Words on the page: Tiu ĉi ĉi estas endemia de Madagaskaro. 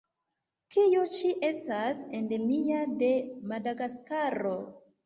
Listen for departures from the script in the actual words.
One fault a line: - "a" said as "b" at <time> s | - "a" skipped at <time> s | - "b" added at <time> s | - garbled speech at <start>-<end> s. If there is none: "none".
- "ĉi" skipped at 1.3 s